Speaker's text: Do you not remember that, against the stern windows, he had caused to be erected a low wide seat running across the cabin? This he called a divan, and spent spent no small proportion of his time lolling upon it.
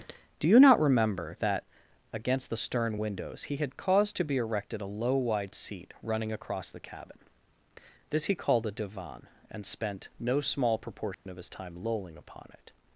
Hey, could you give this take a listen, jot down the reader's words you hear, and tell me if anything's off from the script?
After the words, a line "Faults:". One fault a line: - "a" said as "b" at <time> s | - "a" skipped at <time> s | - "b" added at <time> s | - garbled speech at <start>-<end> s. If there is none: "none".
Do you not remember that, against the stern windows, he had caused to be erected a low wide seat running across the cabin? This he called a divan, and spent no small proportion of his time lolling upon it.
Faults:
- "spent" skipped at 10.1 s